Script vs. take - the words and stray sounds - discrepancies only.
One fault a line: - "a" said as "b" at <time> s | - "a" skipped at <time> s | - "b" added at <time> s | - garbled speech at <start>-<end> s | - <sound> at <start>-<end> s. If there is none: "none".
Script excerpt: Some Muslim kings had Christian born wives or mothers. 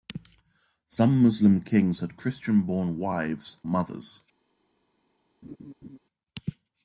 - "or" skipped at 3.6 s
- laugh at 5.4-6.0 s